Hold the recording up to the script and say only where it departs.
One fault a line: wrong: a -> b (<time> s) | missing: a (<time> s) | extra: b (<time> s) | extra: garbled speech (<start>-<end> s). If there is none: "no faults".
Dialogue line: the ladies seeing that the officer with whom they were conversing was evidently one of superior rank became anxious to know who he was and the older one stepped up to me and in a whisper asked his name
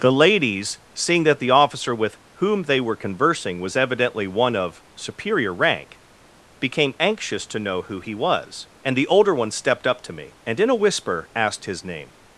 no faults